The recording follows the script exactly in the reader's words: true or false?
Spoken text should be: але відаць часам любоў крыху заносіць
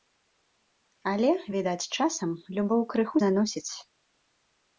true